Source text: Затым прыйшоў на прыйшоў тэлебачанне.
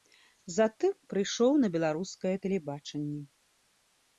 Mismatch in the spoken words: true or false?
true